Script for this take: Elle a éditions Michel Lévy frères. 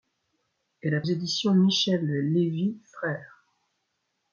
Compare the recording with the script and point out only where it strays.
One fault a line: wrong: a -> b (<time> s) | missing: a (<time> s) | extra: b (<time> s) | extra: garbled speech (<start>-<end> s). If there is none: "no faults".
no faults